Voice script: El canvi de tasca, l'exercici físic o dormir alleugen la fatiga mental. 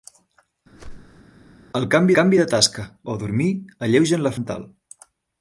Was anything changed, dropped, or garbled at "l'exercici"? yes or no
yes